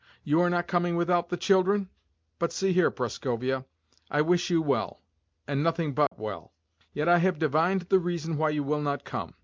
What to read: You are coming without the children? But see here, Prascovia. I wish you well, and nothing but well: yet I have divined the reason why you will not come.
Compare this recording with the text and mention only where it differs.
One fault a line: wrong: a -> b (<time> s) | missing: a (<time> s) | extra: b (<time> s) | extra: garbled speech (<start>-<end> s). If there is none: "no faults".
extra: not (0.5 s)